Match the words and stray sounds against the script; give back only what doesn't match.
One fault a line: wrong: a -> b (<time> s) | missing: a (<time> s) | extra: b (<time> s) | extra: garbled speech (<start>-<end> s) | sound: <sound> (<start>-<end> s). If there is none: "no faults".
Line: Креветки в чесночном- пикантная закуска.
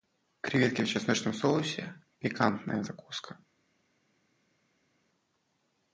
extra: соусе (1.3 s)